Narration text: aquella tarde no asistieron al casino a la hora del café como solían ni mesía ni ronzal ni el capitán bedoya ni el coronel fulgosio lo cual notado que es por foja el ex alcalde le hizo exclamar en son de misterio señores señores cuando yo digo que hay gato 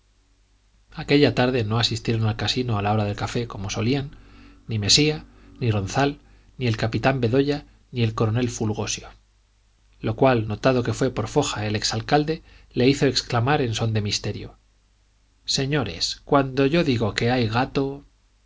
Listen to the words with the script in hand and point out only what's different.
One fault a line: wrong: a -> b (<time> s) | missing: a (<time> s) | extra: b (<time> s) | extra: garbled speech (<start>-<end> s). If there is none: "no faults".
wrong: es -> fue (10.9 s)
missing: señores (16.2 s)